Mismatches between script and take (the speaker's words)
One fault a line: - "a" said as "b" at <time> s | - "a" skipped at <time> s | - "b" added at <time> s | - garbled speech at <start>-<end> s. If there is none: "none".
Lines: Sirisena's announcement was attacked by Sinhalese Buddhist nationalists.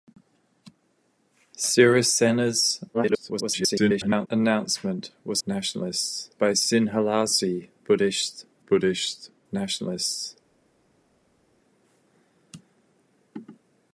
- garbled speech at 2.9-4.3 s
- "attacked" said as "nationalists" at 5.5 s
- "Buddhist" added at 8.7 s